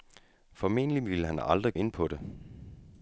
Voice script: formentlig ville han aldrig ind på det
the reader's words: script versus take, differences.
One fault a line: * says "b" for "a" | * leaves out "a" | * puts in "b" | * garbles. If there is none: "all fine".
all fine